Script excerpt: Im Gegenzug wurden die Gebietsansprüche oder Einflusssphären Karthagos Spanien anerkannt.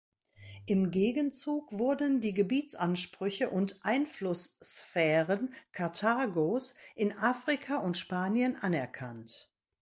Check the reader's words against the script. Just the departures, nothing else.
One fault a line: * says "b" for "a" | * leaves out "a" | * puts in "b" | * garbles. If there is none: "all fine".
* says "und" for "oder"
* puts in "in Afrika und"